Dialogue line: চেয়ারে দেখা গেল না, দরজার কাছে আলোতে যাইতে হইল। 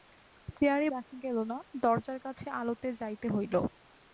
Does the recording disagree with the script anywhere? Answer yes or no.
no